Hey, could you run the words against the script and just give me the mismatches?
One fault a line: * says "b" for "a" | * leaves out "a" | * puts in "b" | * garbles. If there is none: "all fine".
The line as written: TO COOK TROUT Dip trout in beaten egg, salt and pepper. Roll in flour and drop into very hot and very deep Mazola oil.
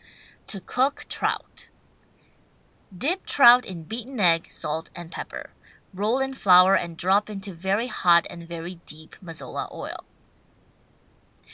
all fine